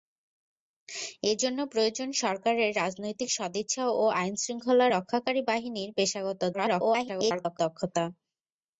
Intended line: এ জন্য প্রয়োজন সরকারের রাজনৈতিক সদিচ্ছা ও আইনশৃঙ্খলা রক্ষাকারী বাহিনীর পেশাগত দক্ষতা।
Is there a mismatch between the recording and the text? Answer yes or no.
yes